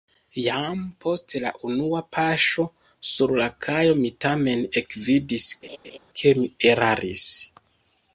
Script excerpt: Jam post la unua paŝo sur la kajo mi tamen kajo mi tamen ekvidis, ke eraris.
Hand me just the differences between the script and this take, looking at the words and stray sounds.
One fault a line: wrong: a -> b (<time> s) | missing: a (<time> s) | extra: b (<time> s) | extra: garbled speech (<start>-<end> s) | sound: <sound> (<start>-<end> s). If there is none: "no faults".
missing: kajo mi tamen (4.7 s)
sound: laugh (5.6-6.0 s)
extra: mi (6.4 s)